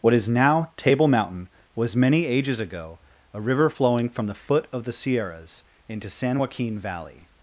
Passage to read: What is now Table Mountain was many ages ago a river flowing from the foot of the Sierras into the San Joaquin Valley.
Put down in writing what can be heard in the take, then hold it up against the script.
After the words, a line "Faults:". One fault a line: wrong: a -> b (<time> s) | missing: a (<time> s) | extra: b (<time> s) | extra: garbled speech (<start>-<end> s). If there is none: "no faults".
What is now Table Mountain was many ages ago a river flowing from the foot of the Sierras into San Joaquin Valley.
Faults:
missing: the (6.1 s)